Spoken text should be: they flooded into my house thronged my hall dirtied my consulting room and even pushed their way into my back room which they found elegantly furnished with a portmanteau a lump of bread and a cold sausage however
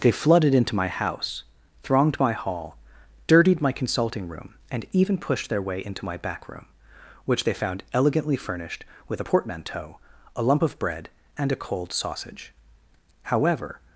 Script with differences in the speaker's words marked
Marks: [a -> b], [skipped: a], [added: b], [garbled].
they flooded into my house thronged my hall dirtied my consulting room and even pushed their way into my back room which they found elegantly furnished with a portmanteau a lump of bread and a cold sausage however